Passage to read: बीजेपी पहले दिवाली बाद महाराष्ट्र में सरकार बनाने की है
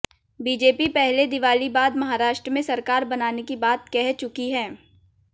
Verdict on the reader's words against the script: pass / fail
fail